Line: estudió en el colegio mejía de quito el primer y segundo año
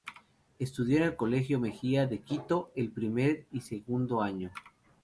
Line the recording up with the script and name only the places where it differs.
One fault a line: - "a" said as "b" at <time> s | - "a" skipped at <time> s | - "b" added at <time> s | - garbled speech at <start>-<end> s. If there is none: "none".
none